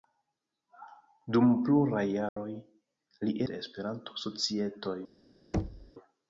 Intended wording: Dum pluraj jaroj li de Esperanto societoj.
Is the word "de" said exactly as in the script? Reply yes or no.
yes